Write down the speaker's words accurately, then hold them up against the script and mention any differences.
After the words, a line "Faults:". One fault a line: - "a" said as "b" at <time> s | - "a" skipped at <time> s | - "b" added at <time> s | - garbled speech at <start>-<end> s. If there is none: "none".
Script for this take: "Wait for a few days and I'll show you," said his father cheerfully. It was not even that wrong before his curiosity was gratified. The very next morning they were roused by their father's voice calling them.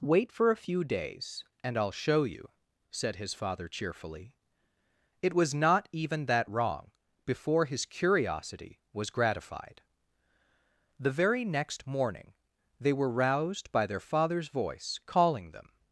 "Wait for a few days and I'll show you," said his father cheerfully. It was not even that wrong before his curiosity was gratified. The very next morning they were roused by their father's voice calling them.
Faults:
none